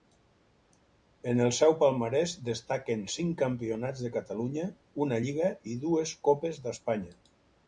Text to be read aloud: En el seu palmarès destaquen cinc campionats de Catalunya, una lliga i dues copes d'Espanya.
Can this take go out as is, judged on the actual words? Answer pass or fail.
pass